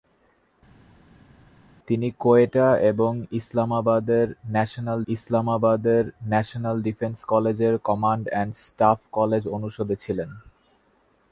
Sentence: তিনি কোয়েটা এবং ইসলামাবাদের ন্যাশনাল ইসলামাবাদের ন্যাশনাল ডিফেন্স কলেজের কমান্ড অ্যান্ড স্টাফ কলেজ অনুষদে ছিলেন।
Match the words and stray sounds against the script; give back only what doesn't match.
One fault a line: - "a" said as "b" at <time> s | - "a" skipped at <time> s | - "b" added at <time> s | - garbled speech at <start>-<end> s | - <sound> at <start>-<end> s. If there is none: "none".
none